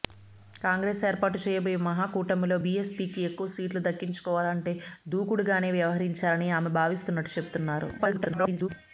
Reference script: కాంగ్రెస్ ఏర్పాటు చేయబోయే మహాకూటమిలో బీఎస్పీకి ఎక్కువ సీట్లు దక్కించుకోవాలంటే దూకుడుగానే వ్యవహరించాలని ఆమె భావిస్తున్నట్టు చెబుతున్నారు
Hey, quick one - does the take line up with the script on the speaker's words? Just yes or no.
no